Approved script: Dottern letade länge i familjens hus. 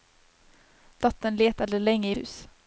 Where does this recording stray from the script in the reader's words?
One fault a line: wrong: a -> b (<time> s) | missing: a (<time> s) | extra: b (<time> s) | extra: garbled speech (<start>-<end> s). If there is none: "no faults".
missing: familjens (2.1 s)